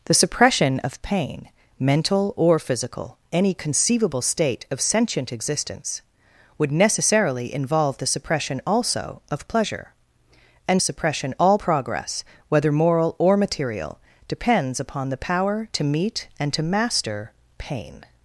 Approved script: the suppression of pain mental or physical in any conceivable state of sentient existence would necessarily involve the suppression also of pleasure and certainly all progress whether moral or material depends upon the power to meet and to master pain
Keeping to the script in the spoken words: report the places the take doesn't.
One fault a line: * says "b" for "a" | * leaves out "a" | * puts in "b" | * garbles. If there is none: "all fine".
* leaves out "in"
* says "suppression" for "certainly"